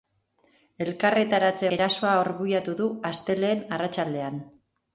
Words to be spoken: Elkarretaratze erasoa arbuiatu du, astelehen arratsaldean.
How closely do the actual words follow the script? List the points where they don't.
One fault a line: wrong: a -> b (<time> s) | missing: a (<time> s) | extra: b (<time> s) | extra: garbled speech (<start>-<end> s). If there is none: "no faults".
no faults